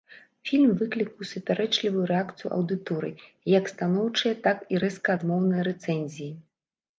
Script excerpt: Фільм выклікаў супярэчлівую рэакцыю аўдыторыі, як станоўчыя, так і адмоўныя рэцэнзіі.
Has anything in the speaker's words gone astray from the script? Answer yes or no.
yes